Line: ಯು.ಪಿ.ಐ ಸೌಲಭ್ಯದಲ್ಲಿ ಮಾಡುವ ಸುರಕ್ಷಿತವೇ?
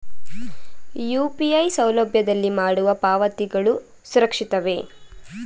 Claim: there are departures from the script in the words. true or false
true